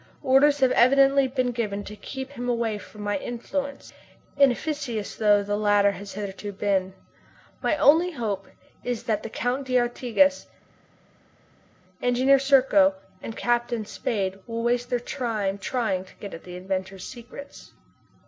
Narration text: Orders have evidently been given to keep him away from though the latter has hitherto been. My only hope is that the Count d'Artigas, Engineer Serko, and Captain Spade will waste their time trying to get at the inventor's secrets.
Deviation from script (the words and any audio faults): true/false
true